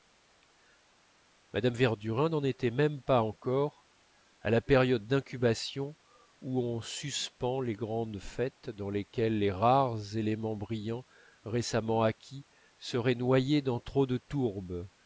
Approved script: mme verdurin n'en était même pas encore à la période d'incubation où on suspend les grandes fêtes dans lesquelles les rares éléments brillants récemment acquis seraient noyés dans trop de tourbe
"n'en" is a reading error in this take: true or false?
false